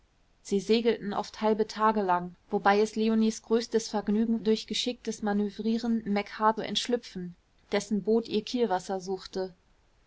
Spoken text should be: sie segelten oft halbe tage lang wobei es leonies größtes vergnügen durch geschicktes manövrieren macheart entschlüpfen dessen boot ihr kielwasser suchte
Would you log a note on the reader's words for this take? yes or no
no